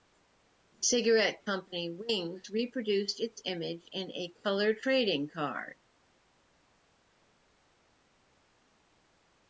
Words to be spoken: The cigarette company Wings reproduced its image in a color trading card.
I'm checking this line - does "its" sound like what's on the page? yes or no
yes